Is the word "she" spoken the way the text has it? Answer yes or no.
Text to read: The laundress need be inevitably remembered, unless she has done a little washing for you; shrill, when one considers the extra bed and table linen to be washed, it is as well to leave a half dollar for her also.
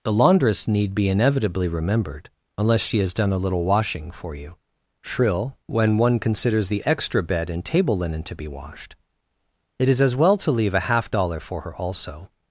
yes